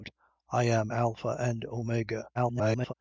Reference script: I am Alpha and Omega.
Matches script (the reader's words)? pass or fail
fail